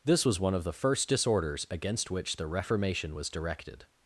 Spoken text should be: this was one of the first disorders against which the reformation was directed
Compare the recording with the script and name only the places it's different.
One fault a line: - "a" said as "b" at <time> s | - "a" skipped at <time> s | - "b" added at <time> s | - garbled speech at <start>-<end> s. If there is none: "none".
none